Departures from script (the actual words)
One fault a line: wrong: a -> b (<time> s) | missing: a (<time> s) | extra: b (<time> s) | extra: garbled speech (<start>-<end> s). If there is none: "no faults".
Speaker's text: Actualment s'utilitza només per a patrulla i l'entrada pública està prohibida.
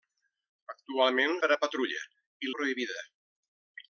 missing: s'utilitza només (1.4 s)
missing: l'entrada pública està (2.5 s)